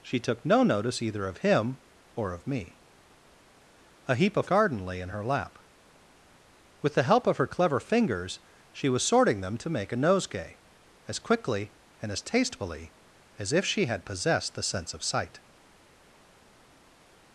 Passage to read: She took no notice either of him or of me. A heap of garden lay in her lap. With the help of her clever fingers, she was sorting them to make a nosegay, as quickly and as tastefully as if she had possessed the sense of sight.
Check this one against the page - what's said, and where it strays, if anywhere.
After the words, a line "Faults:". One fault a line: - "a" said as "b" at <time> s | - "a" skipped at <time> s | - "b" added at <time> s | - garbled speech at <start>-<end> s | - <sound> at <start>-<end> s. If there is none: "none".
She took no notice either of him or of me. A heap of garden lay in her lap. With the help of her clever fingers, she was sorting them to make a nosegay, as quickly and as tastefully as if she had possessed the sense of sight.
Faults:
none